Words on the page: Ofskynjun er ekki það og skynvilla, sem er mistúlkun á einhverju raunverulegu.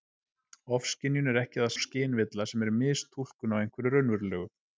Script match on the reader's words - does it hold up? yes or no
yes